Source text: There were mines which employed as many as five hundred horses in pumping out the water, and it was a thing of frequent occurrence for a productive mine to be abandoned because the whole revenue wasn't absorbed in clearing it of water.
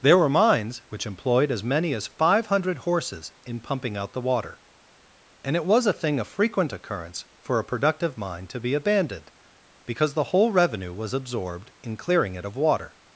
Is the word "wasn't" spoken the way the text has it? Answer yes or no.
no